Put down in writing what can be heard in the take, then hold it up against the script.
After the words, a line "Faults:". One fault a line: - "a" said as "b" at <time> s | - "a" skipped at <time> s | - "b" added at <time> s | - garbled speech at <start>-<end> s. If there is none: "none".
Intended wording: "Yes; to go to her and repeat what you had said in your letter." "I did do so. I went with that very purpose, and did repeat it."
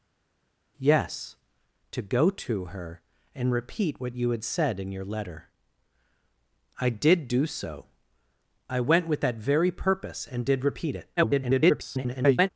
"Yes; to go to her and repeat what you had said in your letter." "I did do so. I went with that very purpose, and did repeat it." [garbled]
Faults:
- garbled speech at 11.2-12.5 s